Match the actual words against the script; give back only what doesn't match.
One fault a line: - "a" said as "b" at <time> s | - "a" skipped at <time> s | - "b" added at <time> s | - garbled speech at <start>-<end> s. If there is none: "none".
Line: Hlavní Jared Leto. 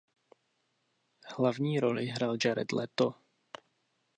- "roli hrál" added at 1.8 s